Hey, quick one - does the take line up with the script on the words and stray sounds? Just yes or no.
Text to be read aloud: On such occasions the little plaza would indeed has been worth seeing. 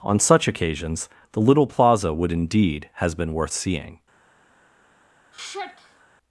no